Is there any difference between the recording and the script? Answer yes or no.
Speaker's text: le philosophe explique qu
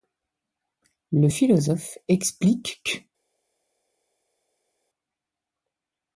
no